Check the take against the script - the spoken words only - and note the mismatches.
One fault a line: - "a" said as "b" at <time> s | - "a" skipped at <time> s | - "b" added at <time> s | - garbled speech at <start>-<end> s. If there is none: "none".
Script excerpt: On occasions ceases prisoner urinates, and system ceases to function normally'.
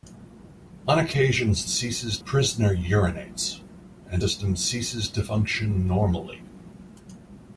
none